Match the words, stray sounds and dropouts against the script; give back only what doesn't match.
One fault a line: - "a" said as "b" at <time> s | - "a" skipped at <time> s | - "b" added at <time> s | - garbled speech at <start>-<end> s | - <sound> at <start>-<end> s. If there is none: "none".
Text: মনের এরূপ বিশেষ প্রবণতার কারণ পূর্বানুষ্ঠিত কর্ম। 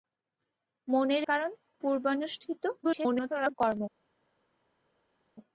- "এরূপ বিশেষ প্রবণতার" skipped at 1.2 s
- garbled speech at 2.8-3.5 s